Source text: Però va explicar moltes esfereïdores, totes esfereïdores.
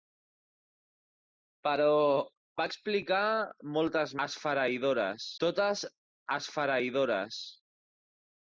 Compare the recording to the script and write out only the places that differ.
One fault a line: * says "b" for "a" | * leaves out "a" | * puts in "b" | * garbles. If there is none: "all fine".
all fine